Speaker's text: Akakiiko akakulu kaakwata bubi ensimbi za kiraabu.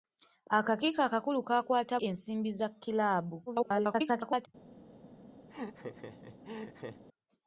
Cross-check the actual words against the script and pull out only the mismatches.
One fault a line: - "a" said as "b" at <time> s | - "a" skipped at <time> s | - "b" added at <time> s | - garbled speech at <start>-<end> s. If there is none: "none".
- "bubi" skipped at 1.9 s
- garbled speech at 3.5-4.5 s